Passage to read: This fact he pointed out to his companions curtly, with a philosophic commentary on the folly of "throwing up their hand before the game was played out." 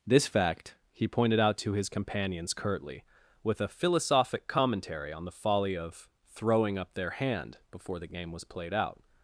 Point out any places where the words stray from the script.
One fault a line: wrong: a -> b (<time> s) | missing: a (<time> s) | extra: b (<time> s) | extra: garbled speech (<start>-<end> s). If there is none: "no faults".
no faults